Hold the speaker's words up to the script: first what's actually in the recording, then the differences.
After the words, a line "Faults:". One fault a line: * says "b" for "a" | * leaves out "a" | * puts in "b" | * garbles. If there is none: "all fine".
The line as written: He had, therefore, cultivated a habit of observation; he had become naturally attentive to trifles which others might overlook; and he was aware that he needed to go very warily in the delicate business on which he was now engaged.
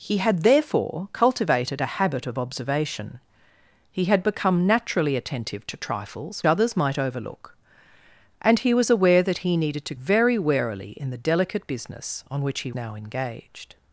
He had, therefore, cultivated a habit of observation; he had become naturally attentive to trifles others might overlook; and he was aware that he needed to very warily in the delicate business on which he now engaged.
Faults:
* leaves out "which"
* leaves out "go"
* leaves out "was"